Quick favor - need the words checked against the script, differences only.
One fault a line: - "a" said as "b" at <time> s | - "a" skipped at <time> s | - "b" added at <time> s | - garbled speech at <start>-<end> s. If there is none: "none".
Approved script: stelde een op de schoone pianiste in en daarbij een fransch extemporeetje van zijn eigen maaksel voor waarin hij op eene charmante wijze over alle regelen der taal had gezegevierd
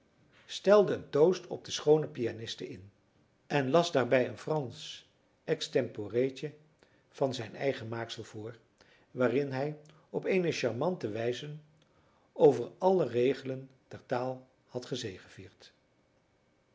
- "toost" added at 1.1 s
- "las" added at 3.7 s